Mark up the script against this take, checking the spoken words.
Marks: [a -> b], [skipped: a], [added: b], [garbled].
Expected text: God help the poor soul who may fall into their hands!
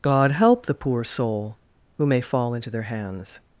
God help the poor soul who may fall into their hands!